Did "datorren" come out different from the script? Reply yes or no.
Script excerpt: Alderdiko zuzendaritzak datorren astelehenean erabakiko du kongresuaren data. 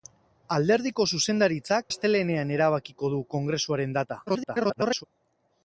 yes